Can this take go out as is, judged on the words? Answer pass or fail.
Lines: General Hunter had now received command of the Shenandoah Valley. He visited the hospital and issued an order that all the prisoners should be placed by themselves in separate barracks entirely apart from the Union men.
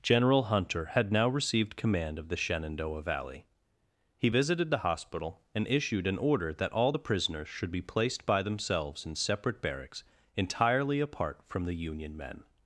pass